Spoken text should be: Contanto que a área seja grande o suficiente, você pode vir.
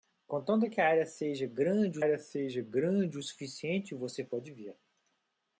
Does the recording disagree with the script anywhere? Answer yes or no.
yes